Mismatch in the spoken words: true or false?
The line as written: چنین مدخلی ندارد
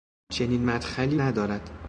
false